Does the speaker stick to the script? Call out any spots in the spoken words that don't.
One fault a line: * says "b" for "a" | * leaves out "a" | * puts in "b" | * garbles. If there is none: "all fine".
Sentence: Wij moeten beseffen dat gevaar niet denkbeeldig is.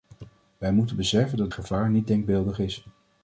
all fine